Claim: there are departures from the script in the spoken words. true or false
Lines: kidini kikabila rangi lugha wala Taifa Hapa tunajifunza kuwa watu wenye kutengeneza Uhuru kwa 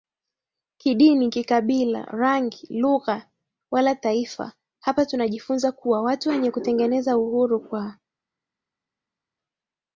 false